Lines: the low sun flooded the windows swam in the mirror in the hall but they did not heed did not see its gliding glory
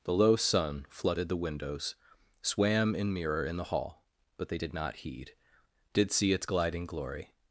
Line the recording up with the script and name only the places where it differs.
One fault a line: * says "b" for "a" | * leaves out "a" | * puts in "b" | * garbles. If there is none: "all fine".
* leaves out "the"
* leaves out "not"